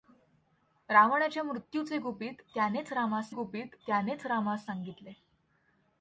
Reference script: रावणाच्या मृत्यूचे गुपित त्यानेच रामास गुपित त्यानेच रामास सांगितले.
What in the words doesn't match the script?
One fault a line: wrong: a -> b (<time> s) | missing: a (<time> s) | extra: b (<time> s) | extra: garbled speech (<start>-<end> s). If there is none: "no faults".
no faults